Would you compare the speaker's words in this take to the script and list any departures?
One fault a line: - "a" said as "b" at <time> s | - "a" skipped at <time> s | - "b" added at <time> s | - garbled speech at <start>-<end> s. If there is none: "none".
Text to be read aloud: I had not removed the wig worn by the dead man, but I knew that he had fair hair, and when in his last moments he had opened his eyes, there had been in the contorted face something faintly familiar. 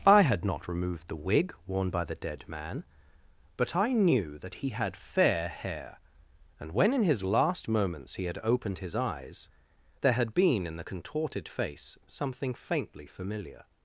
none